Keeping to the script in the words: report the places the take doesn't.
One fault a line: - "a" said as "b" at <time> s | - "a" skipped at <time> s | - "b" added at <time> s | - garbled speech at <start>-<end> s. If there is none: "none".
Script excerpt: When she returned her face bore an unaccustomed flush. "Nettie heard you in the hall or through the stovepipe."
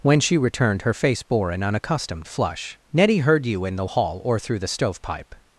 none